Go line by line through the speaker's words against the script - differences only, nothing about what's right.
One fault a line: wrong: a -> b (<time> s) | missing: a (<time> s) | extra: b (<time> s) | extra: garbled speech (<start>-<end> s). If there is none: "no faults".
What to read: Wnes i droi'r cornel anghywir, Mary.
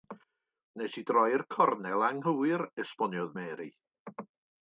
extra: esboniodd (2.9 s)